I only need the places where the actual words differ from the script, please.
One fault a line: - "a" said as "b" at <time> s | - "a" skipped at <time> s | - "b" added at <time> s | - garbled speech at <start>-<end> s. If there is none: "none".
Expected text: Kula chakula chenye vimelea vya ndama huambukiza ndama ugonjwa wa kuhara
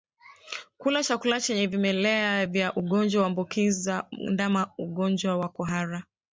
- "ndama" said as "ugonjwa" at 2.8 s